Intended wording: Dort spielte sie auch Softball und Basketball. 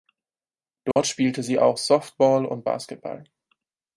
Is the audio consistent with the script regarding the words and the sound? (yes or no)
no